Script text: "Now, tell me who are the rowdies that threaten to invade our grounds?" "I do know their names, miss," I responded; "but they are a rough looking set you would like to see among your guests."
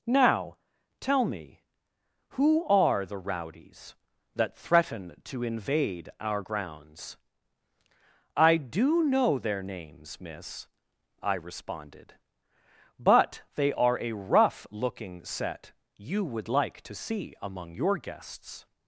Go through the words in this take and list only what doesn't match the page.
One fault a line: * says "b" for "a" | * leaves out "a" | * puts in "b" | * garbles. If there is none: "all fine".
all fine